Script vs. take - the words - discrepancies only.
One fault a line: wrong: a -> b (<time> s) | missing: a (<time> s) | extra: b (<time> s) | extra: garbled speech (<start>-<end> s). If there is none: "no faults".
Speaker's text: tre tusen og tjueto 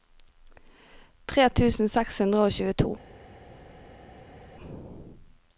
extra: seks hundre (1.9 s)